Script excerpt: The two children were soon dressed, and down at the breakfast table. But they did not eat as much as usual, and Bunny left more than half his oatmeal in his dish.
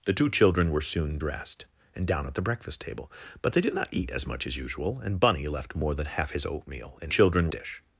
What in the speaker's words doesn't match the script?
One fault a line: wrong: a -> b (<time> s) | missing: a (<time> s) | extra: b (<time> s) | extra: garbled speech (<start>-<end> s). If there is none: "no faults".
wrong: his -> children (7.1 s)